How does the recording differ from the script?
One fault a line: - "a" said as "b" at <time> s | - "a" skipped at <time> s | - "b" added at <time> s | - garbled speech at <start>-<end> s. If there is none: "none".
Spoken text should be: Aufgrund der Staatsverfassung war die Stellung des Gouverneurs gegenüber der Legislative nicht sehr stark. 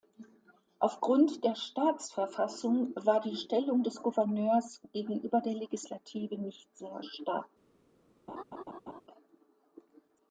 none